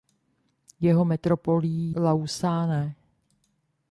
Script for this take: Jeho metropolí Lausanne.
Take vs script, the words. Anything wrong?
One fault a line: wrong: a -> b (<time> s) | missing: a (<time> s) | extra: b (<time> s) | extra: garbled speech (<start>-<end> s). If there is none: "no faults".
no faults